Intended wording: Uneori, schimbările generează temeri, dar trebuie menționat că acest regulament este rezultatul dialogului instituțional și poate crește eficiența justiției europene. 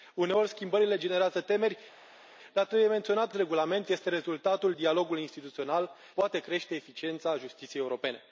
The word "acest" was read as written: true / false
false